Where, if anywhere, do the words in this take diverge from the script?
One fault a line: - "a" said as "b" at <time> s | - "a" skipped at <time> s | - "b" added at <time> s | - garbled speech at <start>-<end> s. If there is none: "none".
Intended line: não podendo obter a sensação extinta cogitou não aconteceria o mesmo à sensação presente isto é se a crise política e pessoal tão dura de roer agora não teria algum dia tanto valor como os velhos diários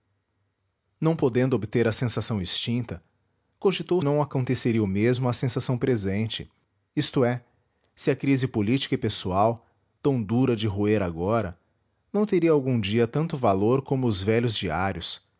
none